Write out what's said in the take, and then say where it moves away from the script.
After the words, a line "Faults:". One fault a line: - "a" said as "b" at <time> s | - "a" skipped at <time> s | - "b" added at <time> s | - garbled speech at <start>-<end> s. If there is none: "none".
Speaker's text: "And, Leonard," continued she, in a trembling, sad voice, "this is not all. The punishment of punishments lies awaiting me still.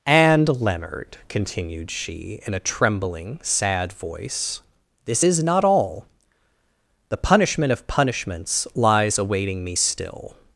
"And, Leonard," continued she, in a trembling, sad voice, "this is not all. The punishment of punishments lies awaiting me still.
Faults:
none